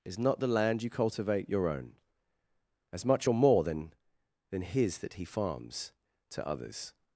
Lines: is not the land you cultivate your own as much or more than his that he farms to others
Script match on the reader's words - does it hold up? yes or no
no